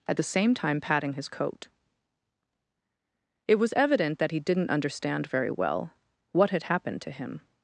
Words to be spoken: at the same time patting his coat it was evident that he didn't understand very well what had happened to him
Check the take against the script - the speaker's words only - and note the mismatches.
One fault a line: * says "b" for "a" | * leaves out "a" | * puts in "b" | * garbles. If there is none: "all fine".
all fine